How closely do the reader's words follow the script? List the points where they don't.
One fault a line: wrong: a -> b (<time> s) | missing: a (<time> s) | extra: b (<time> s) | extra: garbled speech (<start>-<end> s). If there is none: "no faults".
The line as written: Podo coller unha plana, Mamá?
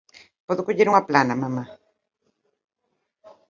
no faults